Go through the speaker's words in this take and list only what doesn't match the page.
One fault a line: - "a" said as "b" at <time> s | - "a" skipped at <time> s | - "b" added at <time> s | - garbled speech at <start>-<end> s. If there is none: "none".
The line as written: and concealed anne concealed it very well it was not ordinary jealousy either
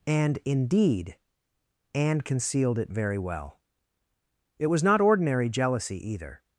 - "concealed" said as "indeed" at 0.4 s